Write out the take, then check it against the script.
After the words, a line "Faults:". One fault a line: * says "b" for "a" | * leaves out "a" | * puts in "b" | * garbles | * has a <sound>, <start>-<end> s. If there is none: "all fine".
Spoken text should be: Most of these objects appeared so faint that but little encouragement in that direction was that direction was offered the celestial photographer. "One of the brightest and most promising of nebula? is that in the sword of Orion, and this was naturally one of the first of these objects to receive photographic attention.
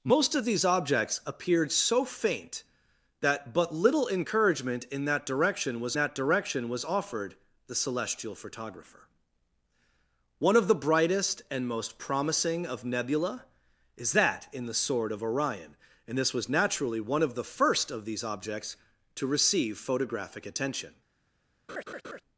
Most of these objects appeared so faint that but little encouragement in that direction was that direction was offered the celestial photographer. "One of the brightest and most promising of nebula? is that in the sword of Orion, and this was naturally one of the first of these objects to receive photographic attention.
Faults:
* has a laugh, 21.7-22.2 s